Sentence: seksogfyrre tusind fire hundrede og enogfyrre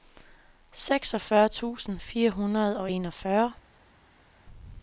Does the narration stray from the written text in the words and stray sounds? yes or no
no